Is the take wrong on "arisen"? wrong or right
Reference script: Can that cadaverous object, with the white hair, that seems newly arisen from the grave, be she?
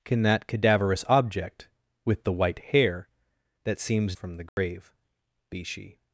wrong